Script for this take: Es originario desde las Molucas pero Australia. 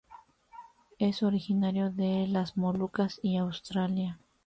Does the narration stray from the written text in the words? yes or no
yes